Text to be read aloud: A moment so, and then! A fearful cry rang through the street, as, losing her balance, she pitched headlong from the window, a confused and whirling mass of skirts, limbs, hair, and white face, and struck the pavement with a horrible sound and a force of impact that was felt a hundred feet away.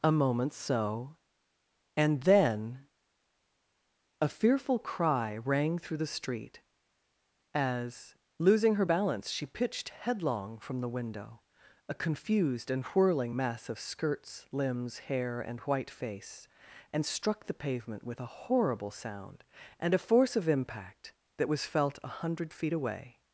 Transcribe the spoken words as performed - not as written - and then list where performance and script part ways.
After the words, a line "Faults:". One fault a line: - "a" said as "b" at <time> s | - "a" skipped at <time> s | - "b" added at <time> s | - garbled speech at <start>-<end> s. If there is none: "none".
A moment so, and then! A fearful cry rang through the street, as, losing her balance, she pitched headlong from the window, a confused and whirling mass of skirts, limbs, hair, and white face, and struck the pavement with a horrible sound and a force of impact that was felt a hundred feet away.
Faults:
none